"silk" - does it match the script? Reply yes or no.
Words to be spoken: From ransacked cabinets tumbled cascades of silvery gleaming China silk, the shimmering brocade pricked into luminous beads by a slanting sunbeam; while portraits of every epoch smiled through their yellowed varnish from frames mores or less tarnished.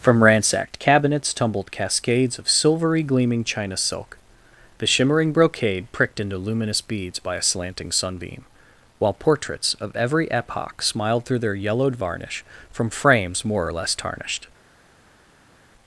yes